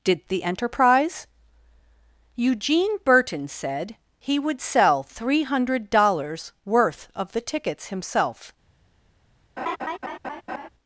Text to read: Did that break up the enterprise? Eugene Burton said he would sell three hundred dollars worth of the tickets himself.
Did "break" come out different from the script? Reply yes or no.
yes